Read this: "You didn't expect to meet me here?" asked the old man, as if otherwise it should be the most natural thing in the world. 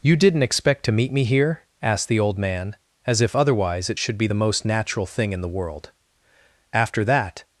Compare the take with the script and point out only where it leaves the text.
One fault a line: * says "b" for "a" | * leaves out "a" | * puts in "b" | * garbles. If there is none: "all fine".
* puts in "After that"